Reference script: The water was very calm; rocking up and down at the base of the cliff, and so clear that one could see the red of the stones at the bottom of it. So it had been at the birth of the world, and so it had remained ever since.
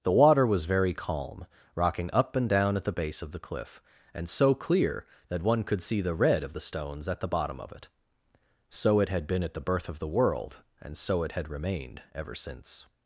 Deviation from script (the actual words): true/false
false